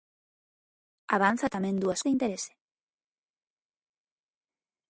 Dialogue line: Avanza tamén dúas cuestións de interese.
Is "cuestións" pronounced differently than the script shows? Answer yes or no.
yes